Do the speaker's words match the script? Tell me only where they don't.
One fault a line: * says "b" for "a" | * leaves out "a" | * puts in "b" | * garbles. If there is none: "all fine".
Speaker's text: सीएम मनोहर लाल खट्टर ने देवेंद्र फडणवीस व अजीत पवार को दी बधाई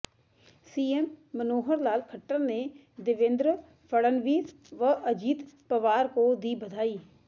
all fine